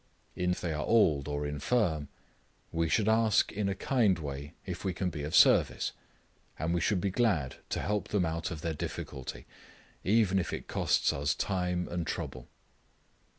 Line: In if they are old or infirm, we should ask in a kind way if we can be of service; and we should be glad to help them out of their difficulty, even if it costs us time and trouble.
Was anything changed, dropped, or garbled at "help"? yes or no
no